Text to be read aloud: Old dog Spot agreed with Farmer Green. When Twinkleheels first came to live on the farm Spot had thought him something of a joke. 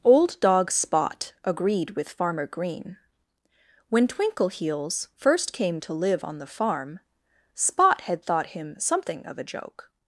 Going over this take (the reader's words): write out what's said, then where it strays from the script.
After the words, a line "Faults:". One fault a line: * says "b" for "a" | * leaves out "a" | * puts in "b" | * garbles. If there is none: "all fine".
Old dog Spot agreed with Farmer Green. When Twinkleheels first came to live on the farm Spot had thought him something of a joke.
Faults:
all fine